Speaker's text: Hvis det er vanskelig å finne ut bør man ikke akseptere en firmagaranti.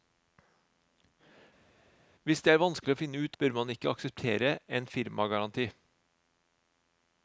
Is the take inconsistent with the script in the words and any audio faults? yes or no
no